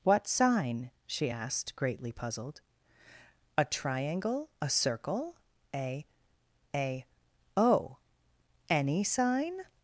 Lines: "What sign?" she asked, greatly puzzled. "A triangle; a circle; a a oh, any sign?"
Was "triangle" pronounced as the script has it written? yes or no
yes